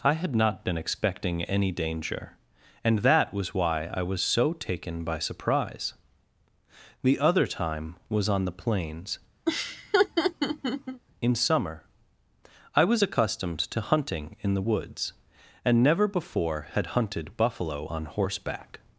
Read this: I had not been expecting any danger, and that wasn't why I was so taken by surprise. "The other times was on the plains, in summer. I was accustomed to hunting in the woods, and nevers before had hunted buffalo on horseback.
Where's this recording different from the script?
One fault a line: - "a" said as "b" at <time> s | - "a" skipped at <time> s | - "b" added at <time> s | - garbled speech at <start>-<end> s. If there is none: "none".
- "wasn't" said as "was" at 3.3 s
- "times" said as "time" at 7.5 s
- "nevers" said as "never" at 15.8 s